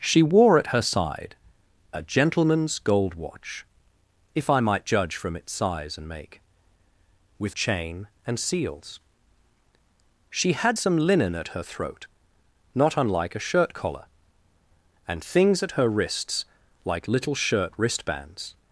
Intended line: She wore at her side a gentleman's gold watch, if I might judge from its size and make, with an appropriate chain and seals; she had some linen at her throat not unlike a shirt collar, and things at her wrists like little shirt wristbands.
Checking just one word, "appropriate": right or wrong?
wrong